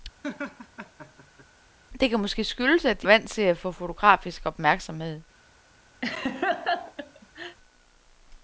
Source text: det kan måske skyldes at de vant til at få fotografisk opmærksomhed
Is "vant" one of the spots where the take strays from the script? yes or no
no